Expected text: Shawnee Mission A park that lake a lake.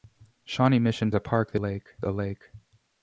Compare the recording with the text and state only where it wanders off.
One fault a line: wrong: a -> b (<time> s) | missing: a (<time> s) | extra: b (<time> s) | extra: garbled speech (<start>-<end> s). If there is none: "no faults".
no faults